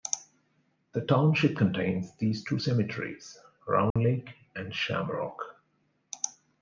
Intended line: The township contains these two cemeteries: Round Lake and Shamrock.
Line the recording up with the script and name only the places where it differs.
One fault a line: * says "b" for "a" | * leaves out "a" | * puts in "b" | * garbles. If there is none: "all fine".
all fine